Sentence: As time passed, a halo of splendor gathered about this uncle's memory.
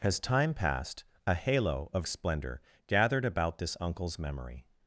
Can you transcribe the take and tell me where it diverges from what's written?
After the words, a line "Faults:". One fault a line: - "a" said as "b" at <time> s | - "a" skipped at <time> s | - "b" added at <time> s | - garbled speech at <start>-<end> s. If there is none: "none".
As time passed, a halo of splendor gathered about this uncle's memory.
Faults:
none